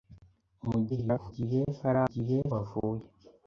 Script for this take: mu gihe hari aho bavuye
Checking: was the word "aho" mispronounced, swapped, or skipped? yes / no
yes